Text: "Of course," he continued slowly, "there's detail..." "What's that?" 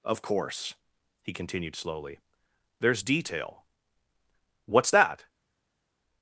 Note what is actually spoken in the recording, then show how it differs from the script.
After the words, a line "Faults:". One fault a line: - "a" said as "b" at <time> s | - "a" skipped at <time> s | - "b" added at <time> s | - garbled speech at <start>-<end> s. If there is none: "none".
"Of course," he continued slowly, "there's detail..." "What's that?"
Faults:
none